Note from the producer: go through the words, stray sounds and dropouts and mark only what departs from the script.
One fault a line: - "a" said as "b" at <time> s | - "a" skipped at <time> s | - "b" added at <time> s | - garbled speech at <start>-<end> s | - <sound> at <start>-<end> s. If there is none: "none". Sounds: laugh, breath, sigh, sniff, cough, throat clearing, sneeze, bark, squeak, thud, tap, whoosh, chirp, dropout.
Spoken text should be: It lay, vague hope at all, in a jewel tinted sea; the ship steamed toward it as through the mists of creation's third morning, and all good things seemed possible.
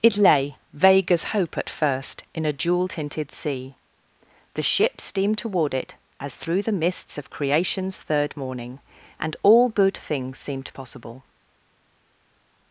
- "as" added at 1.1 s
- "all" said as "first" at 1.7 s